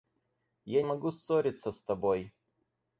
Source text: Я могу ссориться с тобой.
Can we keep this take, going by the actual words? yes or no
yes